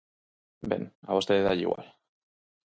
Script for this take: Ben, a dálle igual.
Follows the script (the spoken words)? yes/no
no